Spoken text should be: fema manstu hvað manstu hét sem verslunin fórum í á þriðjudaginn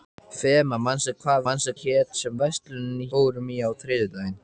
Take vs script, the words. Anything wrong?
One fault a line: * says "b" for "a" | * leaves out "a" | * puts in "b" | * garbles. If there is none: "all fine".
all fine